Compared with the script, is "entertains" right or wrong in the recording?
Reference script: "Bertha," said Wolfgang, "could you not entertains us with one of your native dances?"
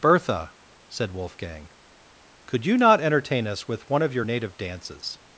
wrong